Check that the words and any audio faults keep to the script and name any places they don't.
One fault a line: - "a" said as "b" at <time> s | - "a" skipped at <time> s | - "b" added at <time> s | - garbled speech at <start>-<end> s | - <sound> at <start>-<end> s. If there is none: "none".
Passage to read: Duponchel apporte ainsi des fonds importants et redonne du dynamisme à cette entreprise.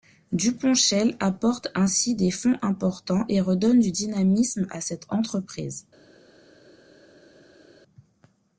none